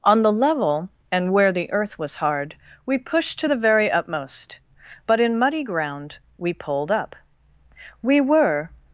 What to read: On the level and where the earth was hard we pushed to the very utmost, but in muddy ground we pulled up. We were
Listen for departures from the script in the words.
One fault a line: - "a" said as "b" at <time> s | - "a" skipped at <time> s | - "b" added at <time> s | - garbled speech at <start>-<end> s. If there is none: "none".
none